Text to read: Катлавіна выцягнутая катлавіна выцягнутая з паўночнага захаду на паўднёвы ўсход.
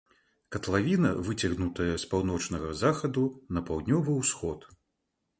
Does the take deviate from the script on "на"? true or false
false